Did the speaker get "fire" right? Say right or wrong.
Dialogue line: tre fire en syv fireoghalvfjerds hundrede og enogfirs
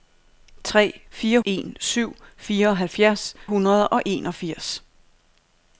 right